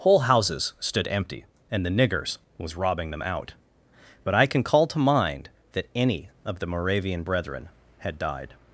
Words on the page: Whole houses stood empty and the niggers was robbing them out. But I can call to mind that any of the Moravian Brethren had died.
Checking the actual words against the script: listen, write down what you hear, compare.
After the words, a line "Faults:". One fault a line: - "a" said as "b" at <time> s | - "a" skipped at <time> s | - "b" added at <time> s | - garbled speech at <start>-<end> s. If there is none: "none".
Whole houses stood empty and the niggers was robbing them out. But I can call to mind that any of the Moravian Brethren had died.
Faults:
none